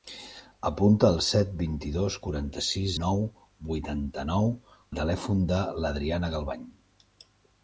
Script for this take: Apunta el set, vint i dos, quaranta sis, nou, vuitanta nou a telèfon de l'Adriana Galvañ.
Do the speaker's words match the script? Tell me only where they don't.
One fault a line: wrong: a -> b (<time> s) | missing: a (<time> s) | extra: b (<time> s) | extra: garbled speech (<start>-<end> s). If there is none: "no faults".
no faults